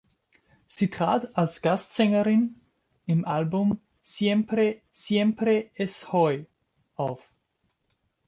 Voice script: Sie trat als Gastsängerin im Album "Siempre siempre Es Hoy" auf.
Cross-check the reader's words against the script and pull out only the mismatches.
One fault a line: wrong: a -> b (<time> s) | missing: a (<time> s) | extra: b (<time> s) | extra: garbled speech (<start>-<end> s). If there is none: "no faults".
no faults